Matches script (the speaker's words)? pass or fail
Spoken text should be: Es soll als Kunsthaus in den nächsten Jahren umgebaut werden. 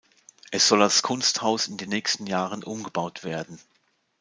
pass